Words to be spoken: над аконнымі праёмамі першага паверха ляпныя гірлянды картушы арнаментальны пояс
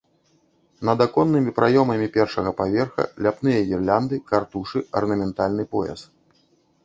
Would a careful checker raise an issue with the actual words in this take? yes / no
no